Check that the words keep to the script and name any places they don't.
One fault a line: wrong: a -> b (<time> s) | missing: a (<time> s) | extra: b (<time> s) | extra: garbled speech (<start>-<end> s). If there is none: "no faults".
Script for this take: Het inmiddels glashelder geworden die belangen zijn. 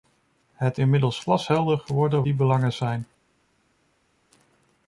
no faults